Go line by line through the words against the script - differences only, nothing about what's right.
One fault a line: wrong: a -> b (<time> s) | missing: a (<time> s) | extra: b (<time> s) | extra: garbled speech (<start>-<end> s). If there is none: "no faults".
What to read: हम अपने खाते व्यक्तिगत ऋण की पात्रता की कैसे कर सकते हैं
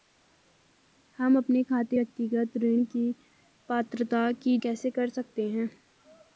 no faults